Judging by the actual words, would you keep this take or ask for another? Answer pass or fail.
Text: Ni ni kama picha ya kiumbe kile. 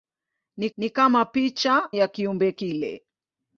pass